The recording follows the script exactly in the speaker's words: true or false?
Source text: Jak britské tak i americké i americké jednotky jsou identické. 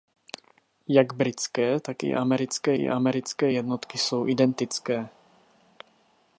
true